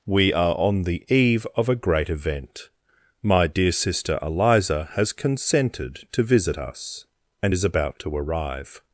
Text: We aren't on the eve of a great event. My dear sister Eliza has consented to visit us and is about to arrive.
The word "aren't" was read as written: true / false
false